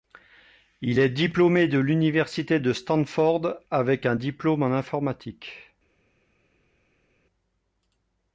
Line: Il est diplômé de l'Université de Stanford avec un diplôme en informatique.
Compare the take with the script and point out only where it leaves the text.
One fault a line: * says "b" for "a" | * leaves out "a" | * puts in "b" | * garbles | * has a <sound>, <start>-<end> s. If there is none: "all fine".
all fine